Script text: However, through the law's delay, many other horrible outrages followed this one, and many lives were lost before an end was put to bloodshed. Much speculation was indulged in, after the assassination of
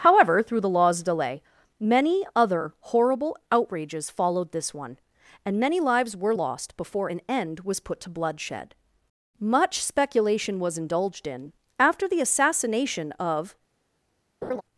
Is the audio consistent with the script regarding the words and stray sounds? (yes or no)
no